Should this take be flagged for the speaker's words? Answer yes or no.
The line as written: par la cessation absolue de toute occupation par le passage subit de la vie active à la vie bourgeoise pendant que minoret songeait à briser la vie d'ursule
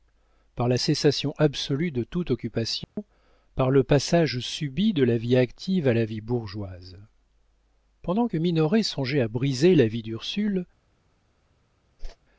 no